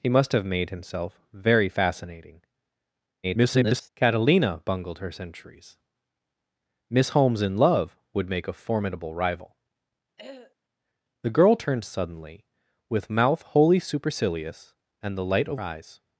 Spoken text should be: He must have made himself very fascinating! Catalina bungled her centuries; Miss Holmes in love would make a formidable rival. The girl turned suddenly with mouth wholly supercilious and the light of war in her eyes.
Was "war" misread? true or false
true